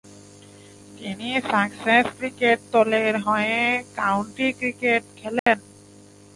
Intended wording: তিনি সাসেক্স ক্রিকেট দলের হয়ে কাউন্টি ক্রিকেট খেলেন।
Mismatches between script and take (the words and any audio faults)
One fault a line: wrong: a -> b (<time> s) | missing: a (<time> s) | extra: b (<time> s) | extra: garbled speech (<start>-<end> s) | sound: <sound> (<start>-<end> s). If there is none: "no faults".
sound: dropout (5.4-5.5 s)